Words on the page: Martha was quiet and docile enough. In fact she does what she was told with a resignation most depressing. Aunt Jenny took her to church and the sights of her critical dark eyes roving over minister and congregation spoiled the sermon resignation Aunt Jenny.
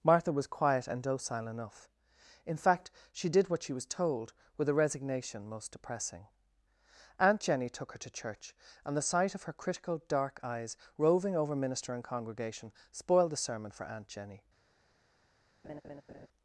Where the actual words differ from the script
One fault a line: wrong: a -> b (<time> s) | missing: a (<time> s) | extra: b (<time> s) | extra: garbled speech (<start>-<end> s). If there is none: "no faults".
wrong: does -> did (3.3 s)
wrong: sights -> sight (9.1 s)
wrong: resignation -> for (13.7 s)